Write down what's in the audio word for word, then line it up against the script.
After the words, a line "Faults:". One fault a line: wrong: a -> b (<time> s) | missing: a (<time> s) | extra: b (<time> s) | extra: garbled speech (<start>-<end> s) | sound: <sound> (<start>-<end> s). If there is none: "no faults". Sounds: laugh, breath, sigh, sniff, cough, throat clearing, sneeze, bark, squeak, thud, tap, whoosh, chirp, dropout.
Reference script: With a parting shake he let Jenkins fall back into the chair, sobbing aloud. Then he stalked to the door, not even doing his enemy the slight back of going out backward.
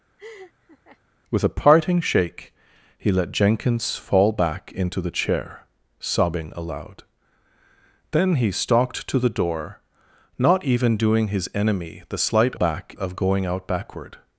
With a parting shake he let Jenkins fall back into the chair, sobbing aloud. Then he stalked to the door, not even doing his enemy the slight back of going out backward.
Faults:
sound: laugh (0.2-1.0 s)